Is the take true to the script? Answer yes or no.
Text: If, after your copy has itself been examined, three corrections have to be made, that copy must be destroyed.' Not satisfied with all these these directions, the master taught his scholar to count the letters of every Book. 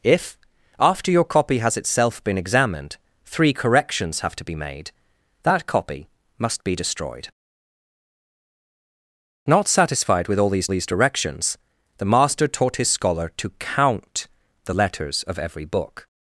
yes